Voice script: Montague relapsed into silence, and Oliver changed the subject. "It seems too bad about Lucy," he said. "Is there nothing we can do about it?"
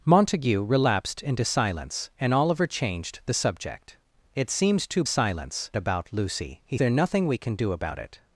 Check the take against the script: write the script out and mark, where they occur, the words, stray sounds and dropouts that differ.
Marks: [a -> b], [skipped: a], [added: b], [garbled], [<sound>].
Montague relapsed into silence, and Oliver changed the subject. "It seems too [bad -> silence] about Lucy," he [skipped: said. "Is] there nothing we can do about it?"